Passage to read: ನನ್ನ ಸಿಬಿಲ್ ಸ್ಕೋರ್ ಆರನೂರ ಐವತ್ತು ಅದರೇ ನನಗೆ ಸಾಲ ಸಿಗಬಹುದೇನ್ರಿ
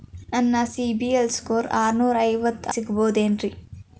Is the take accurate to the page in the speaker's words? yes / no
no